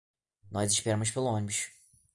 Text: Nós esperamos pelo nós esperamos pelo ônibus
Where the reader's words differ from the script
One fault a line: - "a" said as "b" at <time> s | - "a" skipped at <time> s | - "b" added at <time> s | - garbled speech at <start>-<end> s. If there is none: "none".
- "nós esperamos pelo" skipped at 1.3 s